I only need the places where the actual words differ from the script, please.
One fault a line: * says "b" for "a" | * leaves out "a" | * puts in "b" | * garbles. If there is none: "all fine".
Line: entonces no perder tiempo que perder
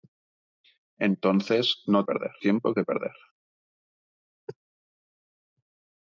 all fine